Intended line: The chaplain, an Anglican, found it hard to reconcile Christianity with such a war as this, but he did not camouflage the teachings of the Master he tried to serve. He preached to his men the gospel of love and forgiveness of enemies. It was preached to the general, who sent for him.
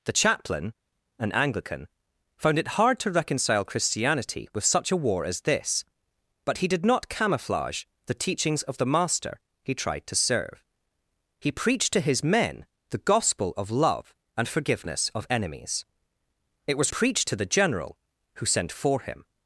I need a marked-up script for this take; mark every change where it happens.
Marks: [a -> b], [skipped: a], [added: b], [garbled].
The chaplain, an Anglican, found it hard to reconcile Christianity with such a war as this, but he did not camouflage the teachings of the Master he tried to serve. He preached to his men the gospel of love and forgiveness of enemies. It was preached to the general, who sent for him.